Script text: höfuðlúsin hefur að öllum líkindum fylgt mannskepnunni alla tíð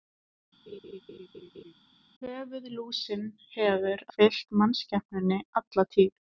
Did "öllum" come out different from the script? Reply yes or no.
yes